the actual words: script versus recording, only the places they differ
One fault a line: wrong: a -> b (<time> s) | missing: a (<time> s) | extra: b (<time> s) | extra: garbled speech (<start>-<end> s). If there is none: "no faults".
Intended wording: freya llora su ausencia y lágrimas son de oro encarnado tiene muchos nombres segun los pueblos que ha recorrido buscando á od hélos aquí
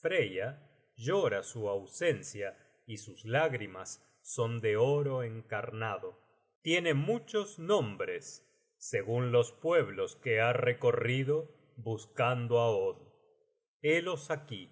extra: sus (3.0 s)